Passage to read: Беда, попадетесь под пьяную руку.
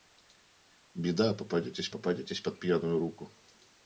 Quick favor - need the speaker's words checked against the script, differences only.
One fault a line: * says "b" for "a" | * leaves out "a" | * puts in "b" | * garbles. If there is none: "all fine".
* puts in "попадетесь"